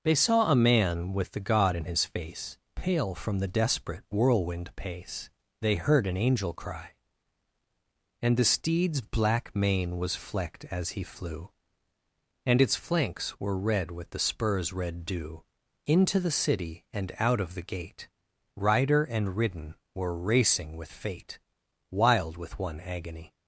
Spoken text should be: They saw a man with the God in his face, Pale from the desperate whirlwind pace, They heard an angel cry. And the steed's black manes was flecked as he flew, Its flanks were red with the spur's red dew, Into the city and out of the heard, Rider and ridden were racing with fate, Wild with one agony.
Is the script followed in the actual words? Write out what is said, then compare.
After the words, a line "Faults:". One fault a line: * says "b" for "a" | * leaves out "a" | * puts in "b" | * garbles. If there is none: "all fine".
They saw a man with the God in his face, Pale from the desperate whirlwind pace, They heard an angel cry. And the steed's black mane was flecked as he flew, And its flanks were red with the spur's red dew, Into the city and out of the gate, Rider and ridden were racing with fate, Wild with one agony.
Faults:
* says "mane" for "manes"
* puts in "And"
* says "gate" for "heard"